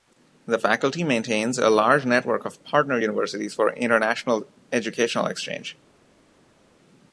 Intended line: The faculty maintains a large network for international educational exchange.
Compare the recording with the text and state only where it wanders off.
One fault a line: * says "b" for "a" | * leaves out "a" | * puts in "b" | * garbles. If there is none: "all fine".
* puts in "of partner universities"